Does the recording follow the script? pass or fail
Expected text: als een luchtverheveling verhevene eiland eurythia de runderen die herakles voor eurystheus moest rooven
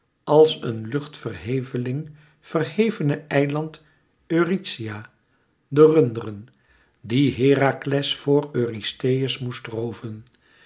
pass